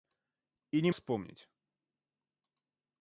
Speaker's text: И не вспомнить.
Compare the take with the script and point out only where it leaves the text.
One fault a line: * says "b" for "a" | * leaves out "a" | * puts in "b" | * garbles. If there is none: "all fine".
all fine